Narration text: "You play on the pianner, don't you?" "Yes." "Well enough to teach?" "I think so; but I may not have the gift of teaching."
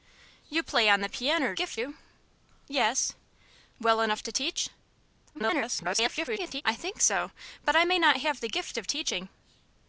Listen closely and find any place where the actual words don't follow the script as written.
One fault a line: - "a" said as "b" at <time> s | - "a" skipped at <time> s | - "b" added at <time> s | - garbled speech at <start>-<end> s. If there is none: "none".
- "don't" said as "gift" at 1.5 s
- garbled speech at 5.3-6.6 s